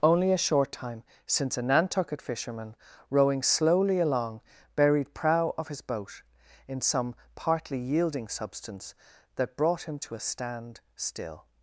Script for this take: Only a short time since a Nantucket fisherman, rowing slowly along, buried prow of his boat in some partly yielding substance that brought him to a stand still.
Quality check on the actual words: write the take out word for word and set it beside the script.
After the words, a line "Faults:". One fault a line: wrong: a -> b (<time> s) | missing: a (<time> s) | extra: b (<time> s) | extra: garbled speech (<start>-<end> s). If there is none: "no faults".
Only a short time since a Nantucket fisherman, rowing slowly along, buried prow of his boat in some partly yielding substance that brought him to a stand still.
Faults:
no faults